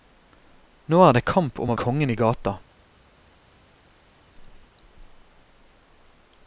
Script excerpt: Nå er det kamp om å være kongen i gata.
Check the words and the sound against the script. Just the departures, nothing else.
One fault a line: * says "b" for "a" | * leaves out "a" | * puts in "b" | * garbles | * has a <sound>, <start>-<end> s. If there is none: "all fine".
* leaves out "være"